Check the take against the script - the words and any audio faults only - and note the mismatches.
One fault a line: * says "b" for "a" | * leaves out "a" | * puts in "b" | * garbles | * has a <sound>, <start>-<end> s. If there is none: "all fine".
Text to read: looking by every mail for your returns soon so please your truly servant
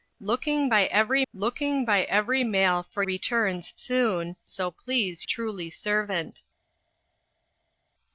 * puts in "looking by every"
* leaves out "your"
* leaves out "your"